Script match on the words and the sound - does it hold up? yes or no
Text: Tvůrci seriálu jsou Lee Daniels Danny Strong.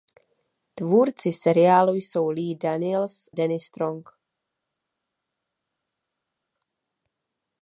yes